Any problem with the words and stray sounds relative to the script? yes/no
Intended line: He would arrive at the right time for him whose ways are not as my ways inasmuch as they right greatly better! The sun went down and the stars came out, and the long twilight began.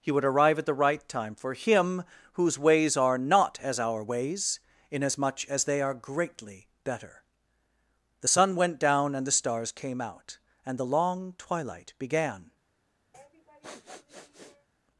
yes